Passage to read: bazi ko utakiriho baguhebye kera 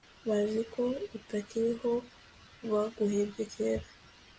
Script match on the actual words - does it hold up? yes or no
yes